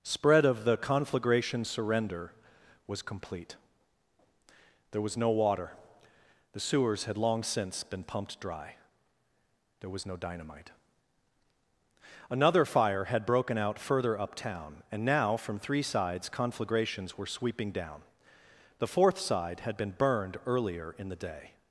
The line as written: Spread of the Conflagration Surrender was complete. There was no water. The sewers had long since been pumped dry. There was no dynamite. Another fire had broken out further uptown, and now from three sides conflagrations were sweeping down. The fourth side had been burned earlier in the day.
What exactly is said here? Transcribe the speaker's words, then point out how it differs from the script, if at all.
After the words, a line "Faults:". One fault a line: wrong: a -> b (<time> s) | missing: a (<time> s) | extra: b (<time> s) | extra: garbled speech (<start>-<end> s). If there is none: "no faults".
Spread of the Conflagration Surrender was complete. There was no water. The sewers had long since been pumped dry. There was no dynamite. Another fire had broken out further uptown, and now from three sides conflagrations were sweeping down. The fourth side had been burned earlier in the day.
Faults:
no faults